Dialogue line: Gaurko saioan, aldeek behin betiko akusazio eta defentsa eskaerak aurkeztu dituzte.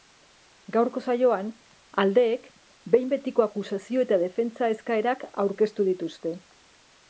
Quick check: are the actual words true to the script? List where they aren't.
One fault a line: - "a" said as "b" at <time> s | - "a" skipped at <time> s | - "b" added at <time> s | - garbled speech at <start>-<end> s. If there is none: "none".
none